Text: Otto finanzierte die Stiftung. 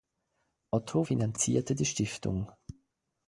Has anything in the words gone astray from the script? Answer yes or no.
no